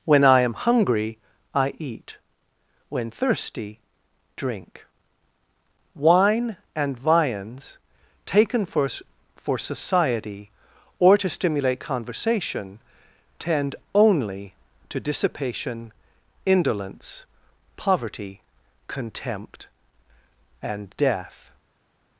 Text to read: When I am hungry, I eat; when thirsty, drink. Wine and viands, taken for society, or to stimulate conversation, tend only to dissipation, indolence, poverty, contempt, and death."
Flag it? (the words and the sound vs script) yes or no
yes